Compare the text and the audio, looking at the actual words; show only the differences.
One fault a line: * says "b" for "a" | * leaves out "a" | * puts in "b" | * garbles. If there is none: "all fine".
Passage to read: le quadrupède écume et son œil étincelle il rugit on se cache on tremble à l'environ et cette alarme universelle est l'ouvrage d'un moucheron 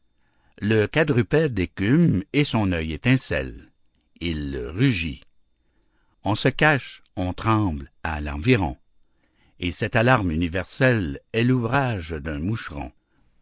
all fine